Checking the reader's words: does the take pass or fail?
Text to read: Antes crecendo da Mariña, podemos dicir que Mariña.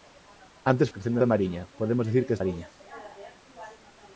pass